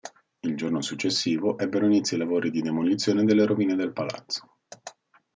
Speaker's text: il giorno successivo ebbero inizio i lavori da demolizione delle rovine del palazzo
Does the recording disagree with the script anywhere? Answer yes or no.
yes